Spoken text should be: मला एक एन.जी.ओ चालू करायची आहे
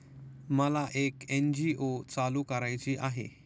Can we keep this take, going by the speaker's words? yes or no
yes